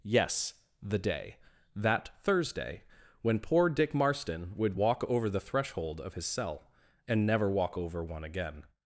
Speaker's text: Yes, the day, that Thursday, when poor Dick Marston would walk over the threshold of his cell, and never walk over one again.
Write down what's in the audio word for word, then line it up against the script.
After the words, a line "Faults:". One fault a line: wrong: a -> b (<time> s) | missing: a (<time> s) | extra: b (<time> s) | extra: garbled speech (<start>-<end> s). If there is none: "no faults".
Yes, the day, that Thursday, when poor Dick Marston would walk over the threshold of his cell, and never walk over one again.
Faults:
no faults